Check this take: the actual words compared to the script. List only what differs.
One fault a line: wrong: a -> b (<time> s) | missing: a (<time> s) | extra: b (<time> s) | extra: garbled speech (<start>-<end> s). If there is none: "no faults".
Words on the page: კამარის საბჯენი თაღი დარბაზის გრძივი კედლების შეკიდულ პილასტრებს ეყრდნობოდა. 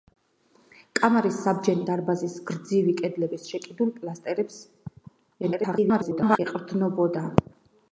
missing: თაღი (1.9 s)
extra: garbled speech (5.4-6.4 s)